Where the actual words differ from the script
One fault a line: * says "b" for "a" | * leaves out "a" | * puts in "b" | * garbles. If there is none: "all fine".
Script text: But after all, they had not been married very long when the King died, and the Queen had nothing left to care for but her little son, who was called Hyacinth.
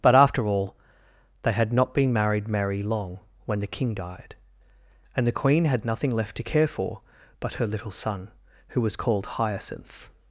* says "merry" for "very"